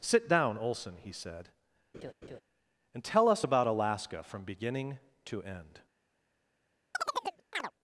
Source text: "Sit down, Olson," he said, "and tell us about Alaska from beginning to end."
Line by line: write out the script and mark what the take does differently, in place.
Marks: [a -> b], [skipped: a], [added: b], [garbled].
"Sit down, Olson," he said, "and tell us about Alaska from beginning to end."